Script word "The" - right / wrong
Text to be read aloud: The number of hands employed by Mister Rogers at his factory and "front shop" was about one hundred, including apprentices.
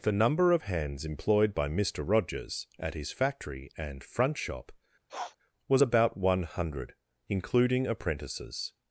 right